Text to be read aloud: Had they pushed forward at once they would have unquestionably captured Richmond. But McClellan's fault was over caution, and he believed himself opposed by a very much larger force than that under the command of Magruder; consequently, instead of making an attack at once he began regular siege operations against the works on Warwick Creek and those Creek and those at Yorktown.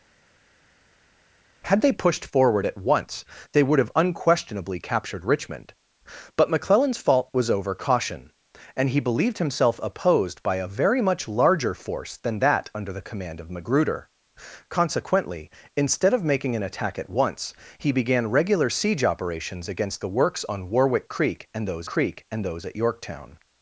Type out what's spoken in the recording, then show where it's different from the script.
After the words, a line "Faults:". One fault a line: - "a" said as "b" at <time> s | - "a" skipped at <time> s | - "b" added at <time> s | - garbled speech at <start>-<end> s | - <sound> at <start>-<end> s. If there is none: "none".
Had they pushed forward at once they would have unquestionably captured Richmond. But McClellan's fault was over caution, and he believed himself opposed by a very much larger force than that under the command of Magruder; consequently, instead of making an attack at once he began regular siege operations against the works on Warwick Creek and those Creek and those at Yorktown.
Faults:
none